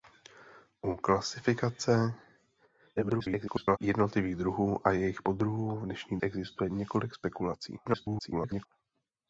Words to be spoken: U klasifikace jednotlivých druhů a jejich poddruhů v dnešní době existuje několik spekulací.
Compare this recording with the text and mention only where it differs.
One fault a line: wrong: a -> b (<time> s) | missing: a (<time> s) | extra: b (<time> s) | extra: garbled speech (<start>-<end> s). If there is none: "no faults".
extra: garbled speech (3.0-3.8 s)
missing: době (6.2 s)
extra: garbled speech (7.8-8.7 s)